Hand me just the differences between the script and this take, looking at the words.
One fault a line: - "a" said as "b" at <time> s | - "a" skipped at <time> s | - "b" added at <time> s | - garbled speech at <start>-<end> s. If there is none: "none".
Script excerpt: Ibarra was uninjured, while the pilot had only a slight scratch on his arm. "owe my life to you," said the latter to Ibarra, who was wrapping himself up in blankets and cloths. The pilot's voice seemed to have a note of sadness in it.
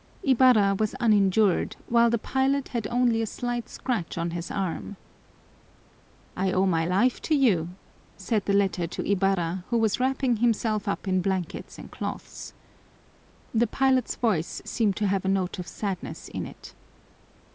- "I" added at 6.3 s